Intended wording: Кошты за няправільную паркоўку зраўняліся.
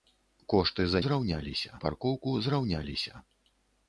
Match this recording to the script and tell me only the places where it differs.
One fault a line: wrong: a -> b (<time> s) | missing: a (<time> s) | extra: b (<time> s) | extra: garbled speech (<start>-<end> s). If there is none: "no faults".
wrong: няправільную -> зраўняліся (1.1 s)